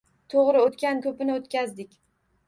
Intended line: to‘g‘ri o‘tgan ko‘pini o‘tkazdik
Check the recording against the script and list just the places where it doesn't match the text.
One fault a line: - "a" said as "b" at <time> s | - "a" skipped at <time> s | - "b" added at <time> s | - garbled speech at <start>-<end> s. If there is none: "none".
none